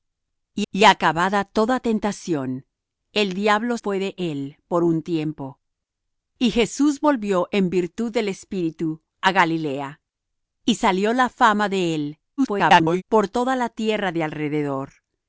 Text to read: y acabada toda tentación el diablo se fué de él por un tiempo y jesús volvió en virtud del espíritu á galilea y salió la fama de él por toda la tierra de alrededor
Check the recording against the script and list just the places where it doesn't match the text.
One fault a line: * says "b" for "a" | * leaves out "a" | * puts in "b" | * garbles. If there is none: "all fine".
* puts in "y"
* leaves out "se"
* garbles